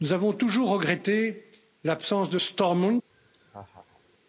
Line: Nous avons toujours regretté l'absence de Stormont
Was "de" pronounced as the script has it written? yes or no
yes